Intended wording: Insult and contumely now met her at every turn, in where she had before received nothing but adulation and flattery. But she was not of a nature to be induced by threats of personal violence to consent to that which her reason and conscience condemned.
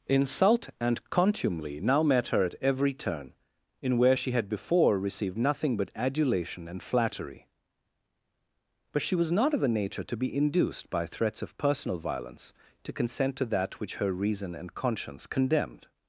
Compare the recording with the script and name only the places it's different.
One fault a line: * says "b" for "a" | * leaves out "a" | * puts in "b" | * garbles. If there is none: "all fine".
all fine